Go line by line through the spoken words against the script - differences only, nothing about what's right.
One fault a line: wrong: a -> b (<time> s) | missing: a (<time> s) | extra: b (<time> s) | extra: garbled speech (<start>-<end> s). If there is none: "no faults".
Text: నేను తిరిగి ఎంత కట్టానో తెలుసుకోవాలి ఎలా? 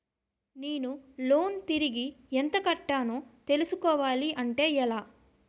extra: లోన్ (1.2 s)
extra: అంటే (4.4 s)